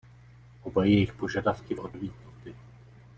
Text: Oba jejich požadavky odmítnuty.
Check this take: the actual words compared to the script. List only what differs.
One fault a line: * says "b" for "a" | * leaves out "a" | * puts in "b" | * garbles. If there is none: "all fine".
all fine